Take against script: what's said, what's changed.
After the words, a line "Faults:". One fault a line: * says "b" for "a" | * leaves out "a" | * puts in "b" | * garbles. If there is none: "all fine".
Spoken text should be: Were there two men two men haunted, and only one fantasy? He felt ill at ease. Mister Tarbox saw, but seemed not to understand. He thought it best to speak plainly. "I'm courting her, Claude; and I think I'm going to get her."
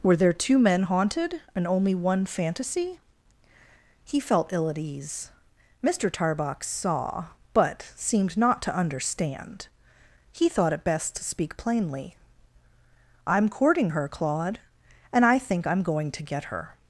Were there two men haunted, and only one fantasy? He felt ill at ease. Mister Tarbox saw, but seemed not to understand. He thought it best to speak plainly. "I'm courting her, Claude; and I think I'm going to get her."
Faults:
* leaves out "two men"